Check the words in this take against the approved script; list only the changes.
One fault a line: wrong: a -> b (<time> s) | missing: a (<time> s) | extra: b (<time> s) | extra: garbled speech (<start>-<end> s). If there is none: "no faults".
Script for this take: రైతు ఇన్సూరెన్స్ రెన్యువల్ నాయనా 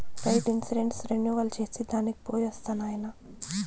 extra: చేసి దానికి పోయొస్తా (1.6 s)